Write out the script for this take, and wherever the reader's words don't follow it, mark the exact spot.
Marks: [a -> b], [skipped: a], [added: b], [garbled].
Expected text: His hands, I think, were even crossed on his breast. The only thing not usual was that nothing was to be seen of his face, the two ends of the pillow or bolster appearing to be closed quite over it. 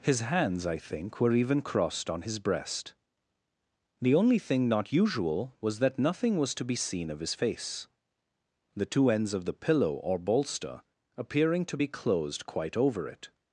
His hands, I think, were even crossed on his breast. The only thing not usual was that nothing was to be seen of his face, the two ends of the pillow or bolster appearing to be closed quite over it.